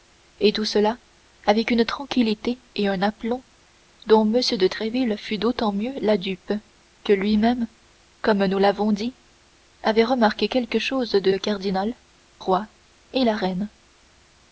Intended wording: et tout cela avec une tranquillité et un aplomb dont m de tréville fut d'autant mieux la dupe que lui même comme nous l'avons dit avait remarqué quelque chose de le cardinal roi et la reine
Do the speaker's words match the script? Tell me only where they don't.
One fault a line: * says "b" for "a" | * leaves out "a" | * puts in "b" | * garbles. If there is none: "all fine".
all fine